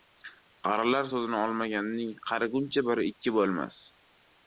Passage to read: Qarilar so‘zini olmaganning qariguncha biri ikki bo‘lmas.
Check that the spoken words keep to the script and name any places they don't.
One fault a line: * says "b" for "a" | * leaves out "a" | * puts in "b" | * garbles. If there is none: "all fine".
all fine